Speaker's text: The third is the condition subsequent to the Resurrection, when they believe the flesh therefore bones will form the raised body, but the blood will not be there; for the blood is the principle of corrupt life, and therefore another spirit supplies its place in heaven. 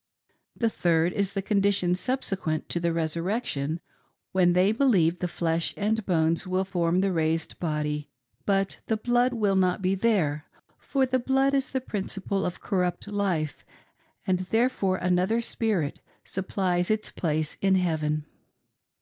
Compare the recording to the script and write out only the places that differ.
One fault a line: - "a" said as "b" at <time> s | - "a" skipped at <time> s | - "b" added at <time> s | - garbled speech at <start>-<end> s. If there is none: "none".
- "therefore" said as "and" at 5.8 s